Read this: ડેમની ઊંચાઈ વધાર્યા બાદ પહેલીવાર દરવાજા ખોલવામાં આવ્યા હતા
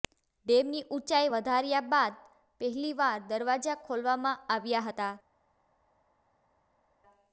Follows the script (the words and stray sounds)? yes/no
yes